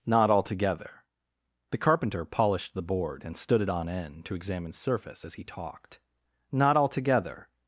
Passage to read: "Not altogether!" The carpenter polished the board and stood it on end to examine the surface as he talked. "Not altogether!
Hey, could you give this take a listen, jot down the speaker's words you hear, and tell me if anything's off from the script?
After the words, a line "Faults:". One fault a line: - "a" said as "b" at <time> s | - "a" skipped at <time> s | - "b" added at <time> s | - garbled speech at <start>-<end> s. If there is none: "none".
"Not altogether!" The carpenter polished the board and stood it on end to examine surface as he talked. "Not altogether!
Faults:
- "the" skipped at 4.7 s